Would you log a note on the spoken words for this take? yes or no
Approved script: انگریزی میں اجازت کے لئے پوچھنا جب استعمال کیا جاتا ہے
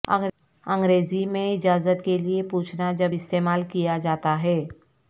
no